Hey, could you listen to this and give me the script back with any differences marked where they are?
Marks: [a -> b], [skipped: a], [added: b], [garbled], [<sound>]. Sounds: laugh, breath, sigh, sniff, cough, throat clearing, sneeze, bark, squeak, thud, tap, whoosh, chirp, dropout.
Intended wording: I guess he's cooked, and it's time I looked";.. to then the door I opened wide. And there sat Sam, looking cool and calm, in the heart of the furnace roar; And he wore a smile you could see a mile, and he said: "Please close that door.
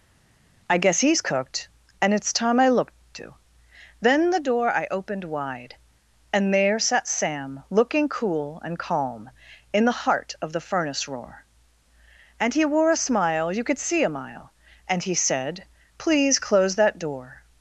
I guess he's cooked, and it's time I looked";.. to then the door I opened wide. And there sat Sam, looking cool and calm, in the heart of the furnace roar; And he wore a smile you could see a mile, and he said: "Please close that door.